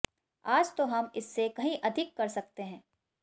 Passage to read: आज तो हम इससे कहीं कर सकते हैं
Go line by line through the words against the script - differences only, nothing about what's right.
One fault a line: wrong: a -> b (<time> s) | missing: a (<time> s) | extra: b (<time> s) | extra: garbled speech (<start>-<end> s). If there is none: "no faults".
extra: अधिक (1.8 s)